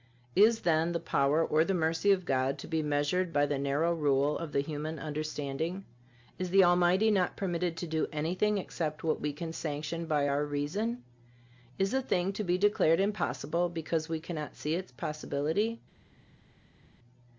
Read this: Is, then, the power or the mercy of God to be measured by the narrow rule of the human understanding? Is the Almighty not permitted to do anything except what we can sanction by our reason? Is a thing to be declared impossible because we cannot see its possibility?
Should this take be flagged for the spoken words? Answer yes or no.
no